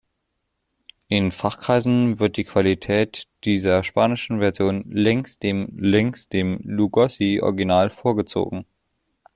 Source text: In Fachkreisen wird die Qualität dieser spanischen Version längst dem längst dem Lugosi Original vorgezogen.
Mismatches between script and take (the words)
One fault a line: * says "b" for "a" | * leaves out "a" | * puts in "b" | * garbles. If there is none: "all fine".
all fine